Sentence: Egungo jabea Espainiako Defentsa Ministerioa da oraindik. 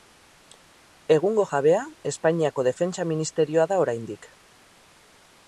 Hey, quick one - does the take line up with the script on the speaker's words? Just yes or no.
yes